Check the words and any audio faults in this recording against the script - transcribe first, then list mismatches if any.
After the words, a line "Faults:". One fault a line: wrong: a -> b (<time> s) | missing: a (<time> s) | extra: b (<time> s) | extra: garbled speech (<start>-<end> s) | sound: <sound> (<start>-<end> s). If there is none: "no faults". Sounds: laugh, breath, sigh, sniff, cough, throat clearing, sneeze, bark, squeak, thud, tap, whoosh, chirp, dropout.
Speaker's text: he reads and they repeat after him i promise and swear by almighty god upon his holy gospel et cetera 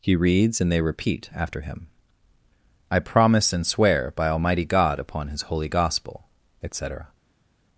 he reads and they repeat after him i promise and swear by almighty god upon his holy gospel et cetera
Faults:
no faults